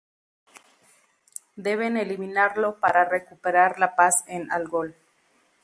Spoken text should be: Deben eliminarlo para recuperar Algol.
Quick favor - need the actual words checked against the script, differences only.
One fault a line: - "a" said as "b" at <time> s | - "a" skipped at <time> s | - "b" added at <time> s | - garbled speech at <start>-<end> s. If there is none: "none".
- "la paz en" added at 3.8 s